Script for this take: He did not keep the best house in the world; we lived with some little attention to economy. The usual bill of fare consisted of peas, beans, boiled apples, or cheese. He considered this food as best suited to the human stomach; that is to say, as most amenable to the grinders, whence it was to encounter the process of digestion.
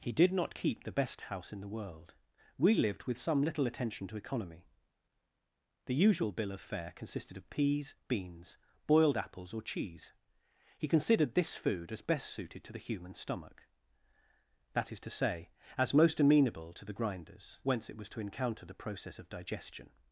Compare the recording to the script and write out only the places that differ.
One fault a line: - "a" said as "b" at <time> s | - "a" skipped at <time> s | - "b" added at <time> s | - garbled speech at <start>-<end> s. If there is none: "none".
none